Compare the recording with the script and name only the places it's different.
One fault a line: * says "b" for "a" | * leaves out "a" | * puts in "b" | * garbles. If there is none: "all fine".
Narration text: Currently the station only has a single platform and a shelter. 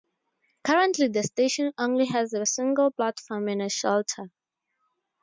all fine